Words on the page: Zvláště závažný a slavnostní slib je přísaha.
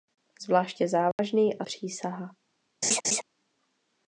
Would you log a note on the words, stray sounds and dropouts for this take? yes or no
yes